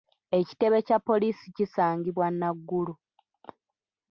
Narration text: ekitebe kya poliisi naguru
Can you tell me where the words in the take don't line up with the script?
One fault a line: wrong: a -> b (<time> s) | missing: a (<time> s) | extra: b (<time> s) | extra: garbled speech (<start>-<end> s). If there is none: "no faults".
extra: kisangibwa (1.6 s)